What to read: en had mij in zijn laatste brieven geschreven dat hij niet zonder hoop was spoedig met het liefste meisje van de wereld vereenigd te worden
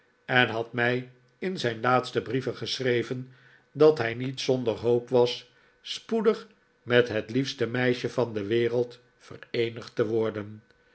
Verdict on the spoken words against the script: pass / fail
pass